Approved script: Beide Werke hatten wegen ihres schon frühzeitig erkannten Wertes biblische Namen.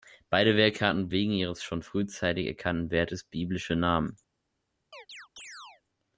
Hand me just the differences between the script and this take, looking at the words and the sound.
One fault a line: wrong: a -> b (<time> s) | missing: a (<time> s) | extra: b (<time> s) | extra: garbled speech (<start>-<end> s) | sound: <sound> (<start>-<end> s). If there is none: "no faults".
sound: chirp (4.9-5.8 s)